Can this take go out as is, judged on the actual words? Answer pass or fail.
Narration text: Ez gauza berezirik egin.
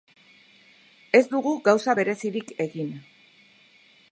fail